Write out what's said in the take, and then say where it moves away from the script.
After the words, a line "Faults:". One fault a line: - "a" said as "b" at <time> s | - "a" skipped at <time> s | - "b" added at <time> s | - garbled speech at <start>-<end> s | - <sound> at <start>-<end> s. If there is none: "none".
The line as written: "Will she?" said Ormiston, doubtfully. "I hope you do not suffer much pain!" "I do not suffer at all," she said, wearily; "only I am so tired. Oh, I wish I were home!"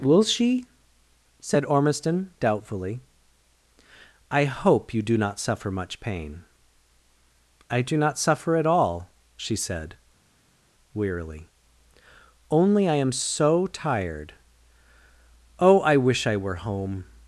"Will she?" said Ormiston, doubtfully. "I hope you do not suffer much pain!" "I do not suffer at all," she said, wearily; "only I am so tired. Oh, I wish I were home!"
Faults:
none